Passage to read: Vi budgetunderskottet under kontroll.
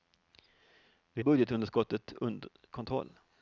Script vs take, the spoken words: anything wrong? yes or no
no